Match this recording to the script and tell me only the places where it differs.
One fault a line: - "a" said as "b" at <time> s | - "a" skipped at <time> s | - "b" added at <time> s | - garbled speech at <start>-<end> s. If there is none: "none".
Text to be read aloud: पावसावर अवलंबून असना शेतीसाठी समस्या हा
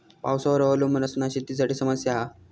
none